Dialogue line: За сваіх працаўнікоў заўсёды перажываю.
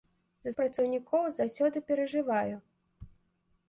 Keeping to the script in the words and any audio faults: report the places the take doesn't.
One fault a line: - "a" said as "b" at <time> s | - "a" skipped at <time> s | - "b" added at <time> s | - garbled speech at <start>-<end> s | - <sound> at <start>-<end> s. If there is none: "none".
- "сваіх" skipped at 0.5 s